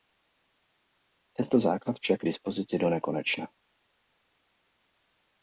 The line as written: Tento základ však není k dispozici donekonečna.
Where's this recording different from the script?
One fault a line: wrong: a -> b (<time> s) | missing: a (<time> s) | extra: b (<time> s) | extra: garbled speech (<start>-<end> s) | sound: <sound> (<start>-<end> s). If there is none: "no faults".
missing: není (2.2 s)